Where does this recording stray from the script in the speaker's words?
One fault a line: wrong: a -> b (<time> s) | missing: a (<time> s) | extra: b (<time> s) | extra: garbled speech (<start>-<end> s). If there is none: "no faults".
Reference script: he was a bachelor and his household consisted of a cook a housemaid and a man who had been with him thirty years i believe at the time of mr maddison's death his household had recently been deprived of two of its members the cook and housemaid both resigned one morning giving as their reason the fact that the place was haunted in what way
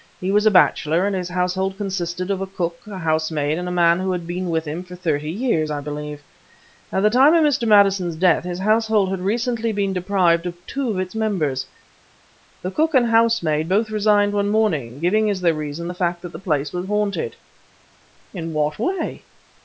extra: for (4.8 s)